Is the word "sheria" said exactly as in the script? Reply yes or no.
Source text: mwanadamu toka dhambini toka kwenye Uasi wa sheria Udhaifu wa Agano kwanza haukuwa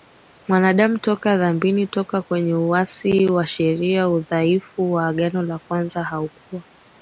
yes